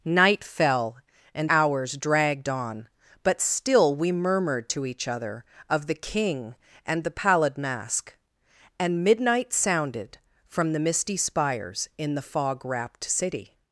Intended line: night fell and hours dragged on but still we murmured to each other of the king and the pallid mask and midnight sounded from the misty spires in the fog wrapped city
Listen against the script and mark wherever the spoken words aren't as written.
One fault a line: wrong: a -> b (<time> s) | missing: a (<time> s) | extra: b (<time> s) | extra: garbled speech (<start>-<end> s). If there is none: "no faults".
no faults